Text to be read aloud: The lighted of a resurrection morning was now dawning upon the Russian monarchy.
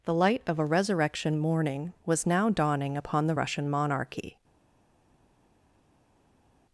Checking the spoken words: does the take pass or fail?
fail